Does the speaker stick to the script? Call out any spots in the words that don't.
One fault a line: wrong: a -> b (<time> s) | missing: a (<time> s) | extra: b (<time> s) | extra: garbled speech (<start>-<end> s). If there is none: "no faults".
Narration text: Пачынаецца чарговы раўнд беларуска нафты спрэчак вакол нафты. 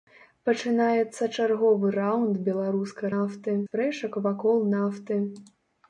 no faults